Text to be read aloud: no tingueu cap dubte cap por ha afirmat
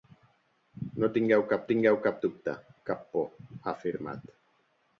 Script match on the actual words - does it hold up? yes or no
no